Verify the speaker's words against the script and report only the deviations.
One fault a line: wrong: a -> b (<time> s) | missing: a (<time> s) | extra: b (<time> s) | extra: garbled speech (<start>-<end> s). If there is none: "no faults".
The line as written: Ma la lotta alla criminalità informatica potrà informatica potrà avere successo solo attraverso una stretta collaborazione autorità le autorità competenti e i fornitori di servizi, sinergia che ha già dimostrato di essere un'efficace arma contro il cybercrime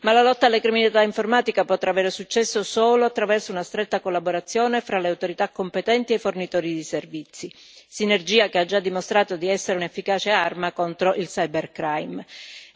missing: informatica potrà (1.9 s)
wrong: autorità -> fra (4.8 s)